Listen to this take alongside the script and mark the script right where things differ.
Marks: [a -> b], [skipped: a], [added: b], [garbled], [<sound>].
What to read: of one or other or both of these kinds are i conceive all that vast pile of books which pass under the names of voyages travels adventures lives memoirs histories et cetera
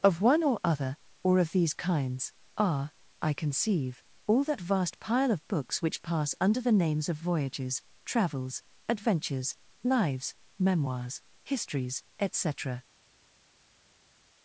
of one or other or [skipped: both] of these kinds are i conceive all that vast pile of books which pass under the names of voyages travels adventures lives memoirs histories et cetera